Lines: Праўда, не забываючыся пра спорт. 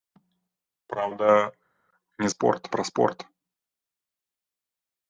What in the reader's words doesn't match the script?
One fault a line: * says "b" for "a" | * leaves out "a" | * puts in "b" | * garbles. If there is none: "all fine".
* says "спорт" for "забываючыся"